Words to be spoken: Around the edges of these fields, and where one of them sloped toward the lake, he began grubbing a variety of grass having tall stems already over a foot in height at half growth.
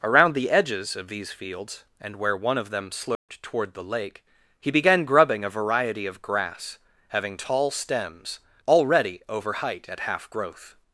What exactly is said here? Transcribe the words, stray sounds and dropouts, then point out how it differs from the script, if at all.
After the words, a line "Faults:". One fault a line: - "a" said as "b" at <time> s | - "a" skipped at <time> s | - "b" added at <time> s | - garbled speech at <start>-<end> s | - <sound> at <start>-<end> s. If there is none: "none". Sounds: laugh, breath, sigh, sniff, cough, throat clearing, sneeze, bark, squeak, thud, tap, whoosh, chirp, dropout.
Around the edges of these fields, and where one of them sloped toward the lake, he began grubbing a variety of grass having tall stems already over height at half growth.
Faults:
- dropout at 3.2-3.3 s
- "a foot in" skipped at 9.5 s